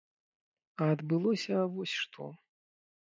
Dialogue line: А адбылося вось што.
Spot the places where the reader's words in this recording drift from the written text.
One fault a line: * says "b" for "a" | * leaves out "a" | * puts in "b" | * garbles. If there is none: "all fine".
all fine